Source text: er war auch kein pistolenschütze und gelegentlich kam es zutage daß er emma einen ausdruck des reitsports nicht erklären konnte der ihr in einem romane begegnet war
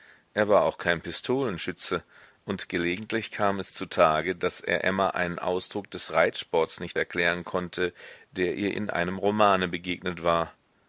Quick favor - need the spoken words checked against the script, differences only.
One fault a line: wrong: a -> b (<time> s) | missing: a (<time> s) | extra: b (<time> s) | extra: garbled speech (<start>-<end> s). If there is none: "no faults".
no faults